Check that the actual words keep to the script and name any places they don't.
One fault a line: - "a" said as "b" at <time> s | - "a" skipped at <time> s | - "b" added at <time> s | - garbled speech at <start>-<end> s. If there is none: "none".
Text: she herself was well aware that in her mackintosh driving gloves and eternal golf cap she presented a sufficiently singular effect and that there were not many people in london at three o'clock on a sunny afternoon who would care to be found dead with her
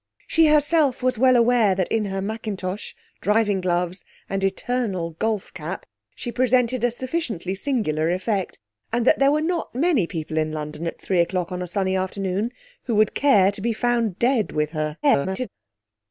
- garbled speech at 15.0-15.5 s